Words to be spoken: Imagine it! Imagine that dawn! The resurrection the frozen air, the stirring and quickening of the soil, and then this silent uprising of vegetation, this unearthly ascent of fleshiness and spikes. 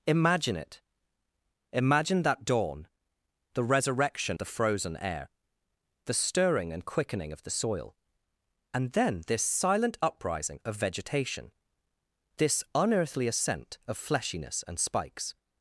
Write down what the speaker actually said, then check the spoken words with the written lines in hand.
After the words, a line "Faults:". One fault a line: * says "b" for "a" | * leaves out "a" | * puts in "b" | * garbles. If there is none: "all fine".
Imagine it! Imagine that dawn! The resurrection the frozen air, the stirring and quickening of the soil, and then this silent uprising of vegetation, this unearthly ascent of fleshiness and spikes.
Faults:
all fine